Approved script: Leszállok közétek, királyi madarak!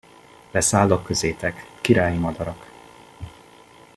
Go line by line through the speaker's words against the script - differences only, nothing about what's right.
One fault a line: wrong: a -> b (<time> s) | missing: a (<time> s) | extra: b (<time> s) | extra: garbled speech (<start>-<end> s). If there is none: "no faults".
no faults